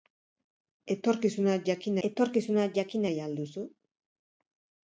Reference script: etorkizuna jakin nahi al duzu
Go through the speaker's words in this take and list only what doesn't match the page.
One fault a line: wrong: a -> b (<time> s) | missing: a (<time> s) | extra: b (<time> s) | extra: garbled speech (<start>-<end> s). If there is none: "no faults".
extra: etorkizuna jakin (2.1 s)